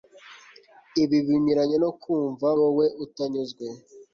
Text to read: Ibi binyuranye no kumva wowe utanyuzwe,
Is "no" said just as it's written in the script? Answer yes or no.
yes